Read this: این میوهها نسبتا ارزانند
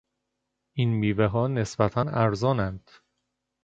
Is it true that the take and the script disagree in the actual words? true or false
false